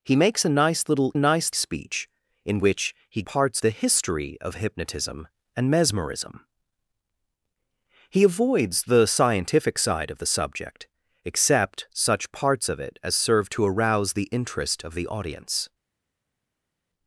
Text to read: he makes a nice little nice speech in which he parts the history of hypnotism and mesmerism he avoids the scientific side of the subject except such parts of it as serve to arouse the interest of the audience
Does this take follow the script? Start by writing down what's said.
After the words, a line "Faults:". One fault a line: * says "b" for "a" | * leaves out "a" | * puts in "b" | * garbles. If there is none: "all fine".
he makes a nice little nice speech in which he parts the history of hypnotism and mesmerism he avoids the scientific side of the subject except such parts of it as serve to arouse the interest of the audience
Faults:
all fine